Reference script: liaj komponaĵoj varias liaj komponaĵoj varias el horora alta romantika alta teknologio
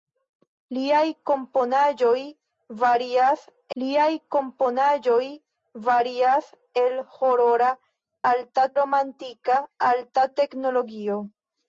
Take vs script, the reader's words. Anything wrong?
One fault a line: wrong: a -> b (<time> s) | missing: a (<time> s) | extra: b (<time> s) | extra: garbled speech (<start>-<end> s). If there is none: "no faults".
no faults